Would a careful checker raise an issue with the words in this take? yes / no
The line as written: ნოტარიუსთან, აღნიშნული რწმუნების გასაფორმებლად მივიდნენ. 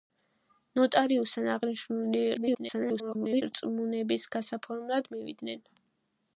yes